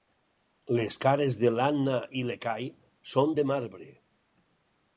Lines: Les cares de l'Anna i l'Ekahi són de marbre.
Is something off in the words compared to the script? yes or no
no